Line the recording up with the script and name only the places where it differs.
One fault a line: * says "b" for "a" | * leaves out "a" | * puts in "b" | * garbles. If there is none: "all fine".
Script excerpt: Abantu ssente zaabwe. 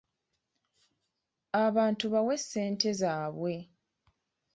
* puts in "bawe"